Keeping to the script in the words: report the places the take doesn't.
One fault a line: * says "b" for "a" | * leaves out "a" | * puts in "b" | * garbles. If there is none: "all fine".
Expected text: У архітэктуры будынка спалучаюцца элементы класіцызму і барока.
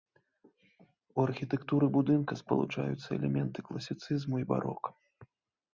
all fine